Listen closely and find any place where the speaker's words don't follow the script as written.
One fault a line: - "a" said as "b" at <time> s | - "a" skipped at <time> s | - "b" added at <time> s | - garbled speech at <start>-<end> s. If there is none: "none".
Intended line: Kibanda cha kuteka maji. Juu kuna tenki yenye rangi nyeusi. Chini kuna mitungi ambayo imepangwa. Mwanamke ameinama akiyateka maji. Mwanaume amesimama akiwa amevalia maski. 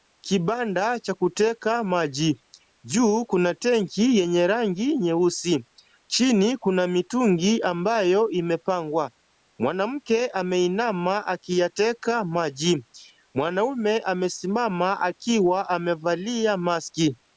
none